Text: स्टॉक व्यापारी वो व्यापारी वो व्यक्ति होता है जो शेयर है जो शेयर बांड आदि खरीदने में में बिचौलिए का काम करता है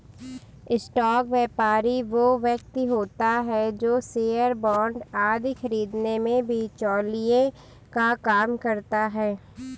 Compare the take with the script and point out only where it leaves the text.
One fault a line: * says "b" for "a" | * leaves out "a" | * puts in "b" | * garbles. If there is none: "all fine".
* leaves out "व्यापारी वो"
* leaves out "है जो शेयर"
* leaves out "में"